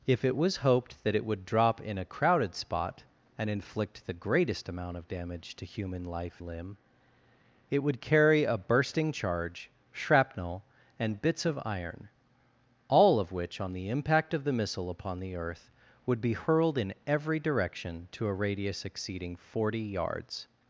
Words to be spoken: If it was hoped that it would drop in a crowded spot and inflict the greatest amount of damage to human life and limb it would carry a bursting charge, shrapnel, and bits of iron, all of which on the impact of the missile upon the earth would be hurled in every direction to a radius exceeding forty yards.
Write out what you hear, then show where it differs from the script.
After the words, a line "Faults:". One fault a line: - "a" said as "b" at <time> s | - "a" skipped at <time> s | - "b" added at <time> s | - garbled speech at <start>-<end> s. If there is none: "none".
If it was hoped that it would drop in a crowded spot and inflict the greatest amount of damage to human life limb it would carry a bursting charge, shrapnel, and bits of iron, all of which on the impact of the missile upon the earth would be hurled in every direction to a radius exceeding forty yards.
Faults:
- "and" skipped at 6.4 s